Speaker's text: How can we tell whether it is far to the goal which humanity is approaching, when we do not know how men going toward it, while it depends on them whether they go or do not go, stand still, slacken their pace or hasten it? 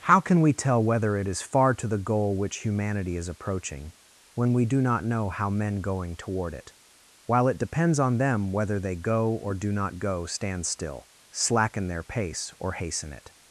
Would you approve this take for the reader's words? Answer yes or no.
yes